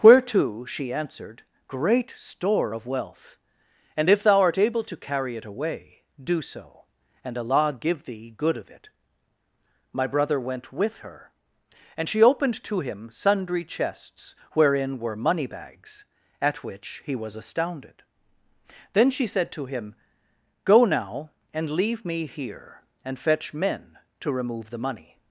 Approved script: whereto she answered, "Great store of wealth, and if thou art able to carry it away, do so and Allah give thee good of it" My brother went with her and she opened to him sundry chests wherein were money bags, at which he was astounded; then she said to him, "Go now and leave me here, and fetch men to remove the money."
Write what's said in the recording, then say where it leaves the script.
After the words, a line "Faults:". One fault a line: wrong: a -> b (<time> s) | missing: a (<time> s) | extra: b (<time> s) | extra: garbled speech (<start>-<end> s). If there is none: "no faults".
whereto she answered, "Great store of wealth, and if thou art able to carry it away, do so and Allah give thee good of it" My brother went with her and she opened to him sundry chests wherein were money bags, at which he was astounded; then she said to him, "Go now and leave me here, and fetch men to remove the money."
Faults:
no faults